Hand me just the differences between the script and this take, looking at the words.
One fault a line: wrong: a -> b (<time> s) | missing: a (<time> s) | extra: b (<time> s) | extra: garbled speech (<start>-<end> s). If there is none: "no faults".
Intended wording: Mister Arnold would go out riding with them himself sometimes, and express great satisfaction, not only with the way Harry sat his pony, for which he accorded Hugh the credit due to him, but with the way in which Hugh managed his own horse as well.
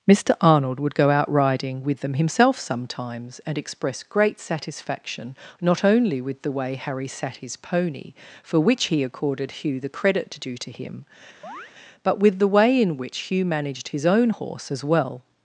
no faults